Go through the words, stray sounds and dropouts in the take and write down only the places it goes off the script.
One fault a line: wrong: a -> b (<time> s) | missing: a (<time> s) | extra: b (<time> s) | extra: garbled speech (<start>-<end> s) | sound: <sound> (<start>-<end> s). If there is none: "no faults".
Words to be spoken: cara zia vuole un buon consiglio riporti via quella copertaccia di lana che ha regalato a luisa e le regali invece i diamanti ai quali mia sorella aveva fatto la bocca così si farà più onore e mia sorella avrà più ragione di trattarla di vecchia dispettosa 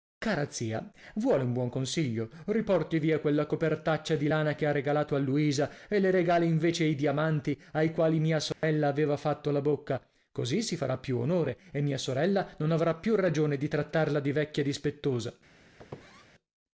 sound: dropout (8.5-8.6 s)
extra: non (12.6 s)
sound: squeak (15.8-16.3 s)